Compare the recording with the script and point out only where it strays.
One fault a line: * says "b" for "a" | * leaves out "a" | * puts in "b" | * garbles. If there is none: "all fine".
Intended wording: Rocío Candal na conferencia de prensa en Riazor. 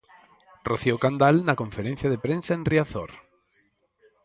all fine